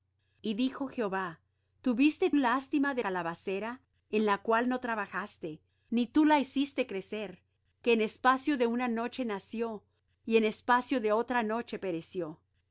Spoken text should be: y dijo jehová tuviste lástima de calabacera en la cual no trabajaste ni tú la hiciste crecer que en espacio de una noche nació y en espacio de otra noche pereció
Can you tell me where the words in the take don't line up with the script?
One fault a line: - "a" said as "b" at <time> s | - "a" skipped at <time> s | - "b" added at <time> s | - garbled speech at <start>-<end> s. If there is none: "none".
none